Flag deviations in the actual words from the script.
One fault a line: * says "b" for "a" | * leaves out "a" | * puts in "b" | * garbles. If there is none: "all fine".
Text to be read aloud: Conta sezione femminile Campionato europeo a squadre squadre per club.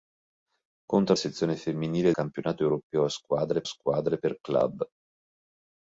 all fine